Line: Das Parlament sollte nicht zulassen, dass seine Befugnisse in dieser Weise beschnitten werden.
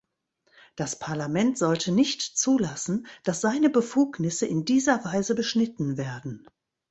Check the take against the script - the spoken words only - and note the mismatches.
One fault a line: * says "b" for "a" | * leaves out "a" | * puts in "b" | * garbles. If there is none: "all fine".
all fine